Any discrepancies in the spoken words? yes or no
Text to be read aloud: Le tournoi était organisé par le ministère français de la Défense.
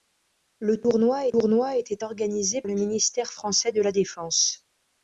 yes